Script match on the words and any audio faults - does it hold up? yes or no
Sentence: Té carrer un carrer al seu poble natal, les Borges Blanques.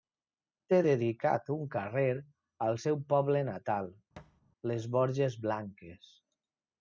no